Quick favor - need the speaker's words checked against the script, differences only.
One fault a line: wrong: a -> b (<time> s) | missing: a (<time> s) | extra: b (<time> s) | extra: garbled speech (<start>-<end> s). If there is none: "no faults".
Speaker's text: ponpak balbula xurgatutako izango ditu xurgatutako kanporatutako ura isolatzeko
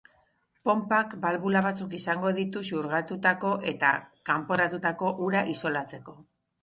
wrong: xurgatutako -> batzuk (1.6 s)
extra: eta (3.7 s)